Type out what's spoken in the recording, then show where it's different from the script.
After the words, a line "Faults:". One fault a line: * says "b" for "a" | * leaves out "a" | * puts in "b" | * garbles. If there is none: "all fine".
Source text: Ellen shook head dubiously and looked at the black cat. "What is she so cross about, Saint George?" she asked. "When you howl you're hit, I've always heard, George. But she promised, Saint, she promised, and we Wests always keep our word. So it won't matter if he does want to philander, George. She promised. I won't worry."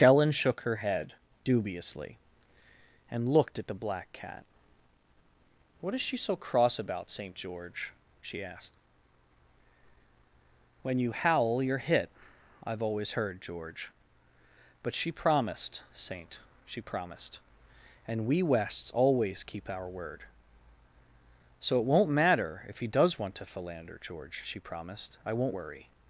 Ellen shook her head dubiously and looked at the black cat. "What is she so cross about, Saint George?" she asked. "When you howl you're hit, I've always heard, George. But she promised, Saint, she promised, and we Wests always keep our word. So it won't matter if he does want to philander, George. She promised. I won't worry."
Faults:
* puts in "her"